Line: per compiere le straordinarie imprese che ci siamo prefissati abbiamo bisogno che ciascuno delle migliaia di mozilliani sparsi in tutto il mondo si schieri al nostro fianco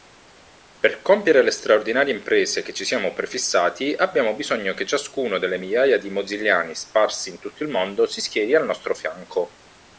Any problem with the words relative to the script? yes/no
no